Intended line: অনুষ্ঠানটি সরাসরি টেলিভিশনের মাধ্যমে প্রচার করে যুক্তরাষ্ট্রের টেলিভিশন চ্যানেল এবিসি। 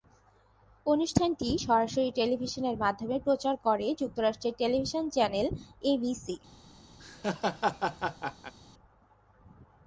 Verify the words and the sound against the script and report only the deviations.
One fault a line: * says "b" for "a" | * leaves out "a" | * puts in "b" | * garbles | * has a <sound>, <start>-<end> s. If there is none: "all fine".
* has a laugh, 7.0-8.5 s